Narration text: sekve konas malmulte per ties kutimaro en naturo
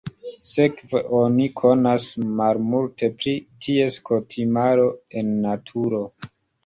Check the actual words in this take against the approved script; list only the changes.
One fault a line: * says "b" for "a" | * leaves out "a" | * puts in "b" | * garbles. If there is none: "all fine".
* puts in "oni"
* says "pri" for "per"